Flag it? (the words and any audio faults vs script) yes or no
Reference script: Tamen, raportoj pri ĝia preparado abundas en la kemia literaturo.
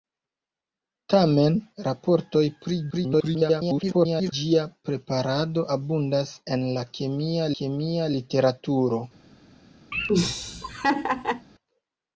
yes